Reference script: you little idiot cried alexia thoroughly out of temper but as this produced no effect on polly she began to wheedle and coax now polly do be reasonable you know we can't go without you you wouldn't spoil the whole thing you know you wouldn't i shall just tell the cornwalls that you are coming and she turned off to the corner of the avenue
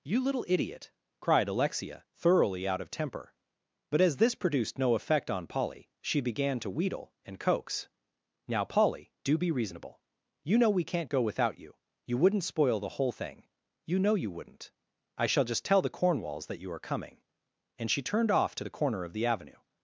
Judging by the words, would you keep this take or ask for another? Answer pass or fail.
pass